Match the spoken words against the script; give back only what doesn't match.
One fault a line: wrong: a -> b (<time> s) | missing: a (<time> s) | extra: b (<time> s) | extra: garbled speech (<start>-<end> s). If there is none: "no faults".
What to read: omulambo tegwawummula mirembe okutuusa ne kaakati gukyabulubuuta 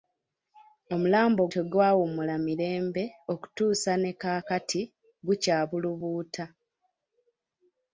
no faults